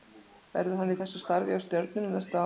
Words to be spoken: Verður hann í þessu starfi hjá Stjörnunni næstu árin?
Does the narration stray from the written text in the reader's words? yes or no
no